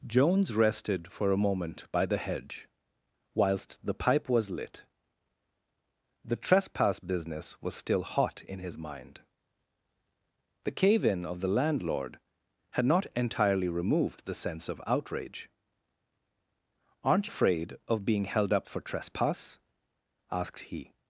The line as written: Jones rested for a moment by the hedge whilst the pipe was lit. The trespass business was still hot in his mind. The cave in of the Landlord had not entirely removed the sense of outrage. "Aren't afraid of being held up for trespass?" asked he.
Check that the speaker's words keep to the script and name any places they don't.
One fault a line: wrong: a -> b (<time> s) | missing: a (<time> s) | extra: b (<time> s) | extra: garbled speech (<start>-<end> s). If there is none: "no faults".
no faults